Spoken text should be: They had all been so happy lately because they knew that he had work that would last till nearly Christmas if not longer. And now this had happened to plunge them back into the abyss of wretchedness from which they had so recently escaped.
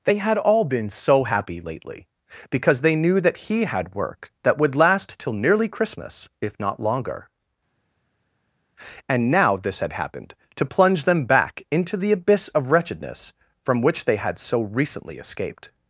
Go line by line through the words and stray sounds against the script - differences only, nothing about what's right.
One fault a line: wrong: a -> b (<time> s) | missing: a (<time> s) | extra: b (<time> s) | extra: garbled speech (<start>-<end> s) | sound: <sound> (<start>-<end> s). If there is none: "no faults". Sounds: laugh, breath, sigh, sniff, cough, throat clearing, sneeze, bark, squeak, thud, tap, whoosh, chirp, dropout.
no faults